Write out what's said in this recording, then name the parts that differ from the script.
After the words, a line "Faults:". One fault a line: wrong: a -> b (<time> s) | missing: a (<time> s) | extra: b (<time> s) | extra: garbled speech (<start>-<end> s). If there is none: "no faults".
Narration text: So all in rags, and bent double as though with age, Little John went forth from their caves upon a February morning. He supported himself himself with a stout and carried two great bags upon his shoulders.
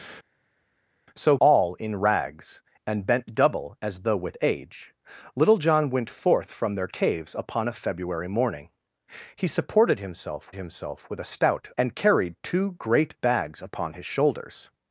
So all in rags, and bent double as though with age, Little John went forth from their caves upon a February morning. He supported himself himself with a stout and carried two great bags upon his shoulders.
Faults:
no faults